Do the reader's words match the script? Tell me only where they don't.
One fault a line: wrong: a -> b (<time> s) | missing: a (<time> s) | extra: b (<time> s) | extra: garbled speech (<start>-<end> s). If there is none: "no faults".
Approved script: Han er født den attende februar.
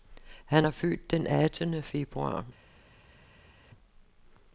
no faults